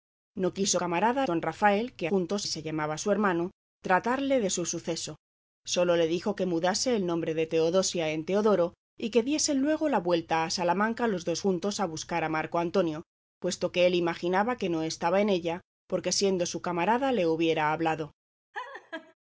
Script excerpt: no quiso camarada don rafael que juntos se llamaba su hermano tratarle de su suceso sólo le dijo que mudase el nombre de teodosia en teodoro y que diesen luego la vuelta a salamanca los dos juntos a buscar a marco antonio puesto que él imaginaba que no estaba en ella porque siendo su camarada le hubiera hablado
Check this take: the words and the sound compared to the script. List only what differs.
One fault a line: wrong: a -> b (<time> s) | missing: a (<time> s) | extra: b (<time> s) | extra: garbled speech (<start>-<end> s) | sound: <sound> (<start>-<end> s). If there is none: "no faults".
sound: laugh (18.5-19.1 s)